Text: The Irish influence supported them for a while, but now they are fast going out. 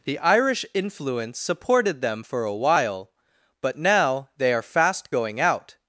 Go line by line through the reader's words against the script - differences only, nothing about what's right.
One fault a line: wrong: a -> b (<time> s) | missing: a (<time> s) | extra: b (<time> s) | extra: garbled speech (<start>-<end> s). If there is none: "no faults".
no faults